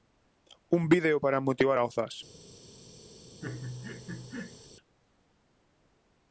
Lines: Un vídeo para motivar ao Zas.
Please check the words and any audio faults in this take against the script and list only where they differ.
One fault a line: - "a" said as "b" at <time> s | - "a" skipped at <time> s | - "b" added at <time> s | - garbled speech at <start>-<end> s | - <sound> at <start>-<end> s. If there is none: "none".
- laugh at 3.4-4.7 s